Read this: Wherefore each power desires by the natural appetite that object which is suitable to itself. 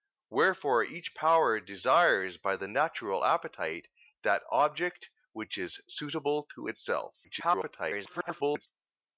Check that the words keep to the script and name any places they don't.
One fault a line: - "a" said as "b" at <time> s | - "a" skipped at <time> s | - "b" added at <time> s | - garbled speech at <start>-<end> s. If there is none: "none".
- garbled speech at 7.2-8.7 s